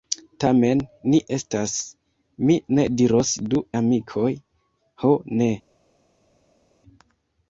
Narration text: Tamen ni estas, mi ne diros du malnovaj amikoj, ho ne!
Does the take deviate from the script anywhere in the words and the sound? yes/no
yes